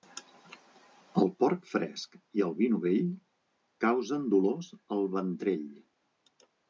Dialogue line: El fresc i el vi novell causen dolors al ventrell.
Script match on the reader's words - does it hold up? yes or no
no